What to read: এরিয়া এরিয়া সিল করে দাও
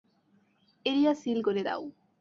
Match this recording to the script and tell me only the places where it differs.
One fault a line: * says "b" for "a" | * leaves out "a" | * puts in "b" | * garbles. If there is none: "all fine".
* leaves out "এরিয়া"